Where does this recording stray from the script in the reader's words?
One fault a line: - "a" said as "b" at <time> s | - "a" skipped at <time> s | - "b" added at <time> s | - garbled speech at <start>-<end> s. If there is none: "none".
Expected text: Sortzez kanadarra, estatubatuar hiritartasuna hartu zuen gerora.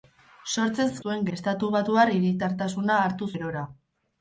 - "kanadarra" said as "zuen" at 1.0 s
- "zuen" skipped at 3.3 s